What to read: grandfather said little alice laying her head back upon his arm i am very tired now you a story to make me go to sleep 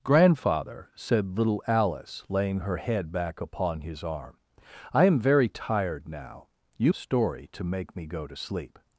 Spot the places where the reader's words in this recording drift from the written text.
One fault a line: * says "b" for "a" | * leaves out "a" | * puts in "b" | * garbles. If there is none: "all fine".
all fine